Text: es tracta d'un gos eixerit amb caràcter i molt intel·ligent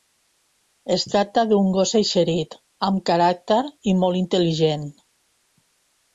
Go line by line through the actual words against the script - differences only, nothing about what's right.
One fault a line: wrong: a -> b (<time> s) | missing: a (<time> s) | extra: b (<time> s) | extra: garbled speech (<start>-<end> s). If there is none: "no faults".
no faults